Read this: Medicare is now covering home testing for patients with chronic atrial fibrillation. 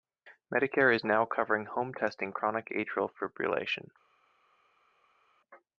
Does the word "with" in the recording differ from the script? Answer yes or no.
yes